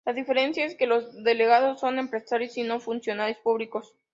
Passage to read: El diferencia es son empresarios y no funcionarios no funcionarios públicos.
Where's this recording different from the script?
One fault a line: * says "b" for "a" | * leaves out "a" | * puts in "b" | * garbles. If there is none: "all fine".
* says "La" for "El"
* puts in "que los delegados"
* leaves out "no funcionarios"